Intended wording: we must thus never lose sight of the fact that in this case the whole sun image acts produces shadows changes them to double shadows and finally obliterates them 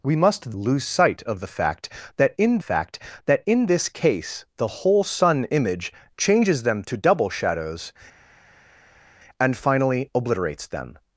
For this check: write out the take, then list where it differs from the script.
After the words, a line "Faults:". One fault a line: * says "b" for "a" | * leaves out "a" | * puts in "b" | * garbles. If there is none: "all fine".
we must lose sight of the fact that in fact that in this case the whole sun image changes them to double shadows and finally obliterates them
Faults:
* leaves out "thus never"
* puts in "fact that in"
* leaves out "acts produces shadows"